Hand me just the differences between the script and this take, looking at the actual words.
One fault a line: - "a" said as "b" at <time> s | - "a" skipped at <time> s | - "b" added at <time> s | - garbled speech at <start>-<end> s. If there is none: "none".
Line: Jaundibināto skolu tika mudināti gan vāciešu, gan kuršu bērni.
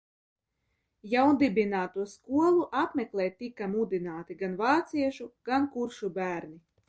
- "apmeklēt" added at 2.8 s